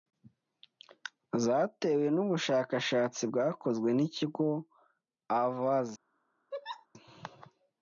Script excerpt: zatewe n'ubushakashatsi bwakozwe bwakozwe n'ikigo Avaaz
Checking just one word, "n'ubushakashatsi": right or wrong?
right